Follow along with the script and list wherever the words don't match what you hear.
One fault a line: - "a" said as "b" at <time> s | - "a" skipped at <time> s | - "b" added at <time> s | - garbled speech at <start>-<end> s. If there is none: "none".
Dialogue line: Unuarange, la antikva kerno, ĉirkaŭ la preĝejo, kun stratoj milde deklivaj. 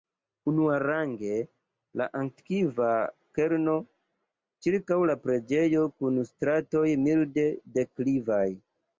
none